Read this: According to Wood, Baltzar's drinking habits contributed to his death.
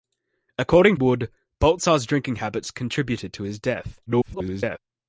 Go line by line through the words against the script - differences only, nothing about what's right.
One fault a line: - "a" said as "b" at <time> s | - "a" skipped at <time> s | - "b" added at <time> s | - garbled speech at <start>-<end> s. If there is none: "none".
- "to" skipped at 1.0 s
- garbled speech at 4.1-4.8 s